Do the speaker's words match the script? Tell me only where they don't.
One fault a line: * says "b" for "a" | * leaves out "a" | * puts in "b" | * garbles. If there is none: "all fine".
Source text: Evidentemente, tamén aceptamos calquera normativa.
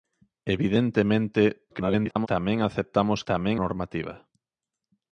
* garbles
* says "tamén" for "calquera"